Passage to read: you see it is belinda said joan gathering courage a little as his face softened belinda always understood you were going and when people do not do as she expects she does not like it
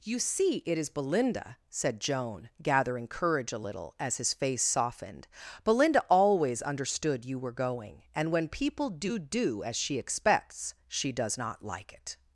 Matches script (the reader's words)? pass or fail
fail